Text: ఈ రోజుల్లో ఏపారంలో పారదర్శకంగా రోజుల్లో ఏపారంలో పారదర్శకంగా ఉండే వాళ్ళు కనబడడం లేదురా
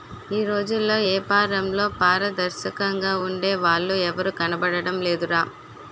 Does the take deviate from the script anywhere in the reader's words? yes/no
yes